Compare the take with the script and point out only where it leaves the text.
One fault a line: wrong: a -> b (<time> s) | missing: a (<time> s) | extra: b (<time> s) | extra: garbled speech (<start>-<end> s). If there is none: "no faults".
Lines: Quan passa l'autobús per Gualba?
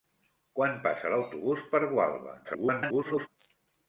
extra: garbled speech (2.4-3.3 s)